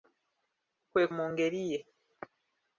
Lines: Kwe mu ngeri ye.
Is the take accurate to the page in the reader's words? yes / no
yes